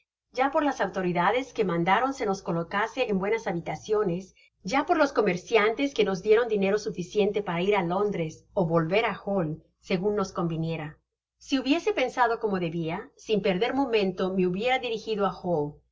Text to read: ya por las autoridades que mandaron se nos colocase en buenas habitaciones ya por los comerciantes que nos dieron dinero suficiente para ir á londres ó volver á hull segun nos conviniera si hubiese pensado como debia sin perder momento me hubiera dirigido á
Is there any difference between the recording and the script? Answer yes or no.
no